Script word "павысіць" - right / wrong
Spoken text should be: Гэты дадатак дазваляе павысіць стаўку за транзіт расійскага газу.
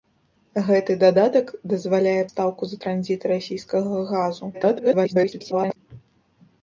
wrong